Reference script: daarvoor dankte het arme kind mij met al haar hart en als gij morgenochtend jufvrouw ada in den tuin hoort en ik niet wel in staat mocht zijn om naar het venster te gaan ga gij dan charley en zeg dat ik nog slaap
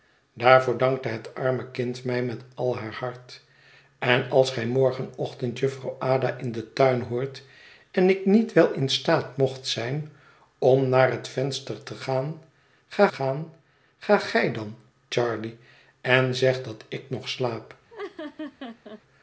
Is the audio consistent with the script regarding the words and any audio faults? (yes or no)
no